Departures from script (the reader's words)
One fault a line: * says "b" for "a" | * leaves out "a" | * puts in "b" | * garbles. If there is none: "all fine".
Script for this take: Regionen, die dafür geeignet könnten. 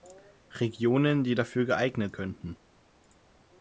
all fine